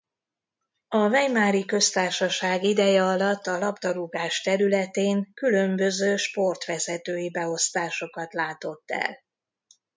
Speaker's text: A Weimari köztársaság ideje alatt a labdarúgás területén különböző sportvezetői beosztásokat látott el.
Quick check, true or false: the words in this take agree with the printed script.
true